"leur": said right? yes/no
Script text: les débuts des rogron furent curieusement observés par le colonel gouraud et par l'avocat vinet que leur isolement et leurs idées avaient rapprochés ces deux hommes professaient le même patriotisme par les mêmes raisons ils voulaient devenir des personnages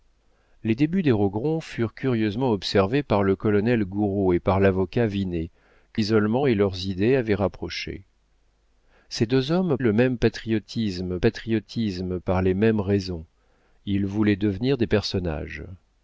no